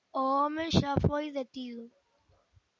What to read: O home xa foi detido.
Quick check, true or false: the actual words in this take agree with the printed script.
true